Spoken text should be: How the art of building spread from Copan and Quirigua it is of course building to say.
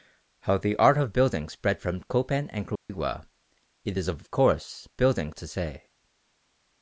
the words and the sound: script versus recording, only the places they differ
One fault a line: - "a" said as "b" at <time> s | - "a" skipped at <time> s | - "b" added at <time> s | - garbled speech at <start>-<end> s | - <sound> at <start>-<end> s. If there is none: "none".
- dropout at 2.8-2.9 s